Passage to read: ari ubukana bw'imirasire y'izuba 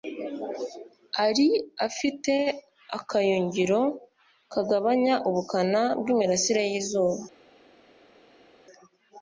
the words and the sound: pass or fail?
fail